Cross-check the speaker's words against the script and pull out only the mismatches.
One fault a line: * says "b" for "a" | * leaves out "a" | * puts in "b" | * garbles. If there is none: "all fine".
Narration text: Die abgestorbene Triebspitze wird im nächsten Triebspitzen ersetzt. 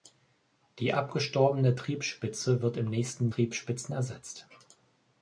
all fine